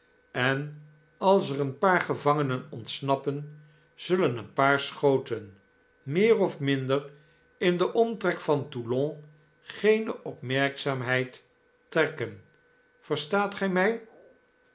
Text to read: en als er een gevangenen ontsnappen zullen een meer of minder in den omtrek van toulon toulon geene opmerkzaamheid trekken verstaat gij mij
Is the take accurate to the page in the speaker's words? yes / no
no